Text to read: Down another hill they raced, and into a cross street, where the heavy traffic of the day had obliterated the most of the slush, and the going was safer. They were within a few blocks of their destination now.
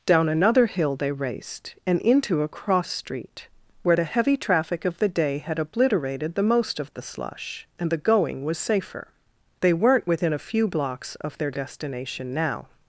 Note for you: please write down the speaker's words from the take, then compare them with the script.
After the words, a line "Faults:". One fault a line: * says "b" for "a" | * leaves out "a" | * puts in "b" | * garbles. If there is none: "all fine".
Down another hill they raced, and into a cross street, where the heavy traffic of the day had obliterated the most of the slush, and the going was safer. They weren't within a few blocks of their destination now.
Faults:
* says "weren't" for "were"